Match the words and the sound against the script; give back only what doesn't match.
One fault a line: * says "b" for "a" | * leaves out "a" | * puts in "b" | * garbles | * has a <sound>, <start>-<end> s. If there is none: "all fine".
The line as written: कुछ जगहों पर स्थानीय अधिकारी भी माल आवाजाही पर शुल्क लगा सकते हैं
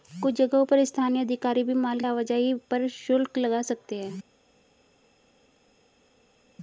all fine